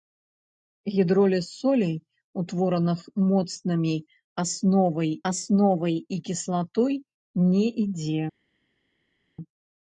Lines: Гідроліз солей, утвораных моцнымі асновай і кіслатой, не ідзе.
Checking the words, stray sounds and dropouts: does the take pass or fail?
fail